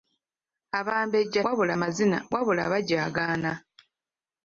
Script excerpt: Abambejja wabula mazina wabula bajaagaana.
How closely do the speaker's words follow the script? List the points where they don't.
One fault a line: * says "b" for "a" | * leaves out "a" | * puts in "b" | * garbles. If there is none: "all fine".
all fine